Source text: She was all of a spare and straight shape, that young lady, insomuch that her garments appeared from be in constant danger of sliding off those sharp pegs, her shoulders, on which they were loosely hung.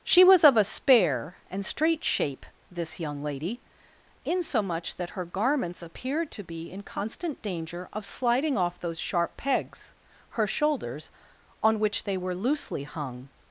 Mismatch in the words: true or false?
true